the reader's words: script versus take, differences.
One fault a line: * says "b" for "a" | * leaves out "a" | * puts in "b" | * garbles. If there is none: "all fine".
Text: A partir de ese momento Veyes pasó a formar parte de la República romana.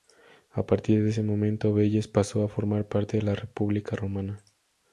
all fine